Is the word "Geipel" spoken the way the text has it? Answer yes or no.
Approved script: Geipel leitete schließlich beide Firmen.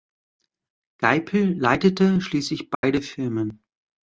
yes